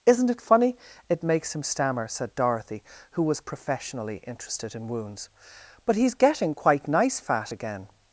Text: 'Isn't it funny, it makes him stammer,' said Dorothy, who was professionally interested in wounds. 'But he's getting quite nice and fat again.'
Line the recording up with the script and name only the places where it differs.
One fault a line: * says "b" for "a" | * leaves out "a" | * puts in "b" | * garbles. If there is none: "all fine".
* leaves out "and"